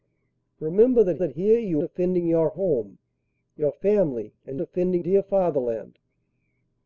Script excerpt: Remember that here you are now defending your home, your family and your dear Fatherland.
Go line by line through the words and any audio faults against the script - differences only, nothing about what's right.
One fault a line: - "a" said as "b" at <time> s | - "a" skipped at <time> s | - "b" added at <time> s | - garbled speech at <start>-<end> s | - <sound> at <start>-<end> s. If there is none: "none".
- "that" added at 1.2 s
- "are now" skipped at 1.8 s
- "your" said as "defending" at 4.6 s